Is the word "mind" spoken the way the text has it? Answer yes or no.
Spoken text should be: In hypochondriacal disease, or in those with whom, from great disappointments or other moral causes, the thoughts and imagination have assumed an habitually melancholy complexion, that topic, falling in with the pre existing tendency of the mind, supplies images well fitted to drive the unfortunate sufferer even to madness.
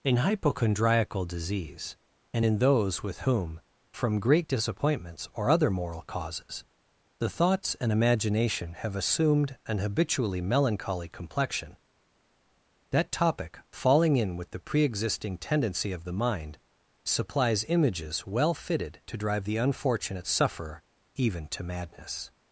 yes